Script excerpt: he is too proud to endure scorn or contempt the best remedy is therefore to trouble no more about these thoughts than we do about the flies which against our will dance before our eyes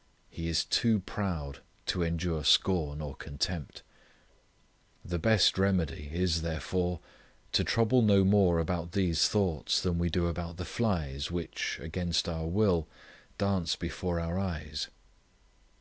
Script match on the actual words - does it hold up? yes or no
yes